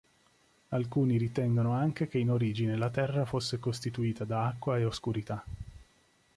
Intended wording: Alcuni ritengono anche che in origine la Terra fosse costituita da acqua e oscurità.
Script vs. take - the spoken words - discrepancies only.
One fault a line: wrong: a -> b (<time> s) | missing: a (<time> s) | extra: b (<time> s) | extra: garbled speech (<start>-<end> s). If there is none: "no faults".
no faults